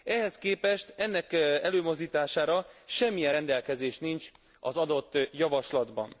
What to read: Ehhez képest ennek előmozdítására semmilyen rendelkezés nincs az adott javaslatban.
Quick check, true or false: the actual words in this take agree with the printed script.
true